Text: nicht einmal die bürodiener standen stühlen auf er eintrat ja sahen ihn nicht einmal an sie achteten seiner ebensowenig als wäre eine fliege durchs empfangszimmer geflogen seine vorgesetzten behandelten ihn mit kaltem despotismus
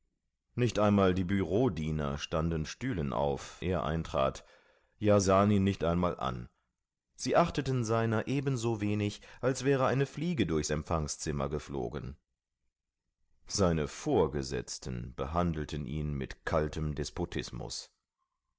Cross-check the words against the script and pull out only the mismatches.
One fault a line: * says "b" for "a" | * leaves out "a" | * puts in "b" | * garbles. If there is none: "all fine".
all fine